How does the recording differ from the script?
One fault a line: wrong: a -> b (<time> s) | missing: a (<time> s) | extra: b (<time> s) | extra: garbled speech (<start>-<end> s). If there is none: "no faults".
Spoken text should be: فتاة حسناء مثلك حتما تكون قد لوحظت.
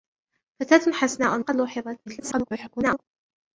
missing: مثلك حتما تكون (1.4 s)
extra: garbled speech (2.1-3.0 s)